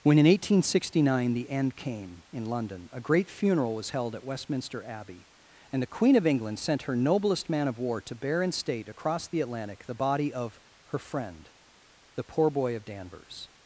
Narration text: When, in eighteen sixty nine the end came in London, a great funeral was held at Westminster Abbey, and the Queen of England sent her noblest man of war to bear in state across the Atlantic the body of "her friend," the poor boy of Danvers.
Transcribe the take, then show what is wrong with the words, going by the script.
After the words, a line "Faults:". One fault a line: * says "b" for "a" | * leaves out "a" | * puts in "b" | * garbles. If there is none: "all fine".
When, in eighteen sixty nine the end came in London, a great funeral was held at Westminster Abbey, and the Queen of England sent her noblest man of war to bear in state across the Atlantic the body of "her friend," the poor boy of Danvers.
Faults:
all fine